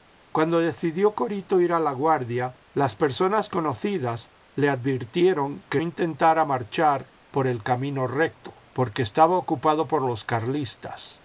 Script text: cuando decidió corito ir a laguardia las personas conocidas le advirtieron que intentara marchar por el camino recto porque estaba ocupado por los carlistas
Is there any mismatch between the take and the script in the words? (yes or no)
no